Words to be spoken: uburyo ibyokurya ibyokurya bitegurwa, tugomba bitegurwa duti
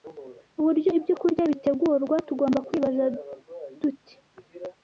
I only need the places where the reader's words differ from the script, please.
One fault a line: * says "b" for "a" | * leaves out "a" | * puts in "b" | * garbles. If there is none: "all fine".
* leaves out "ibyokurya"
* says "kwibaza" for "bitegurwa"